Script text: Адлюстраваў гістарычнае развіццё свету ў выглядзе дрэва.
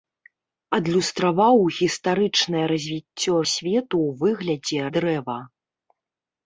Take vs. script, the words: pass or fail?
pass